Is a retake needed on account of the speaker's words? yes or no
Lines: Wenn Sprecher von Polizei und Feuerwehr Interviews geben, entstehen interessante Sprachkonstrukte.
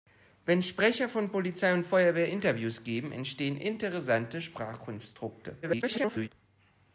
yes